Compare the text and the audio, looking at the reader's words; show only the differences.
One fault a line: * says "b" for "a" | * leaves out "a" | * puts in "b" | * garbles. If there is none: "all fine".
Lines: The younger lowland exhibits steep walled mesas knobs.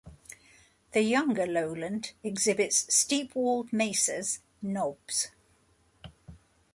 all fine